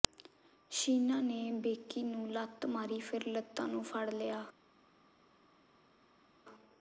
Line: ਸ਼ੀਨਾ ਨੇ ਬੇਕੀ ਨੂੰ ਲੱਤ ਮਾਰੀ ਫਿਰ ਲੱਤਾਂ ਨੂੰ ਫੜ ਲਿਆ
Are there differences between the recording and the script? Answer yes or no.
no